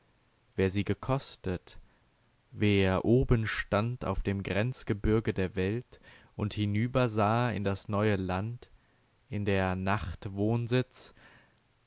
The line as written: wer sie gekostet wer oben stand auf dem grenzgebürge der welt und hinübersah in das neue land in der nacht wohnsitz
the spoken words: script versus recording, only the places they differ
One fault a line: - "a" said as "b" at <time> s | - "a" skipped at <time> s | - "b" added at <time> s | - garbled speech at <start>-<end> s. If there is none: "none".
none